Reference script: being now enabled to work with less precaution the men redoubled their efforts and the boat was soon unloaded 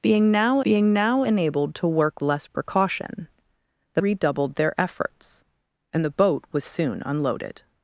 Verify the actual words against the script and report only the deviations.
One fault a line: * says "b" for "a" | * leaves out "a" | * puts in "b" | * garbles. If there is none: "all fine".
* puts in "being now"
* leaves out "with"
* leaves out "men"